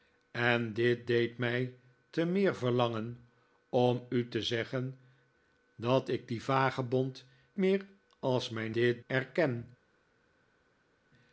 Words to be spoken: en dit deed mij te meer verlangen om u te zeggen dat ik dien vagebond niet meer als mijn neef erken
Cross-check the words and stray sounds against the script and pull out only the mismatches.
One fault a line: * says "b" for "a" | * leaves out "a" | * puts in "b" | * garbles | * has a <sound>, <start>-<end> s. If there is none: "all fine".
* leaves out "niet"
* says "dit" for "neef"